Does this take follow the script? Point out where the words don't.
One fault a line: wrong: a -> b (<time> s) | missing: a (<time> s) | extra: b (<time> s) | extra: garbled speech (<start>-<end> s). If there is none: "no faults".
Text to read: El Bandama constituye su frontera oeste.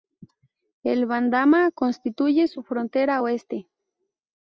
no faults